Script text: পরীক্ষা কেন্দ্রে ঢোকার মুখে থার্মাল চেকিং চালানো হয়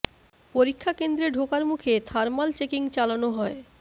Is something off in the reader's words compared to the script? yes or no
no